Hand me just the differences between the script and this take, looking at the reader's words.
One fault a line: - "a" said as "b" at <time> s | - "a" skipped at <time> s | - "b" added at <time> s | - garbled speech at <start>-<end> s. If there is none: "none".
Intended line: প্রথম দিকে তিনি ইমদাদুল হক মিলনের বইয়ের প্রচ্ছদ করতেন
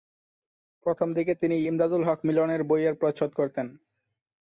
none